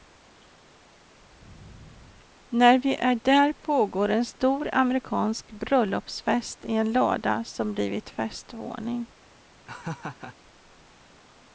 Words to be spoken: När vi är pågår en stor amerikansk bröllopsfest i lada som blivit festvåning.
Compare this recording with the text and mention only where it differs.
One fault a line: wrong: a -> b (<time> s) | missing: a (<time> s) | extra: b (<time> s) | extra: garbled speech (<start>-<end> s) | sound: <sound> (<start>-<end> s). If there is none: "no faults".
extra: där (3.1 s)
extra: en (6.7 s)
sound: laugh (9.7-10.4 s)